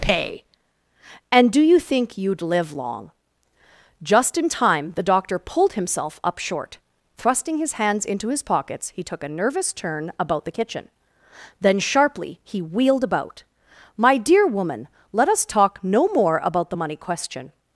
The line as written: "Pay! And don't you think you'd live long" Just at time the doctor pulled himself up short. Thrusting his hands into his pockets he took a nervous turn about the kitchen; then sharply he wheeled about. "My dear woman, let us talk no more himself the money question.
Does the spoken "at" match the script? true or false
false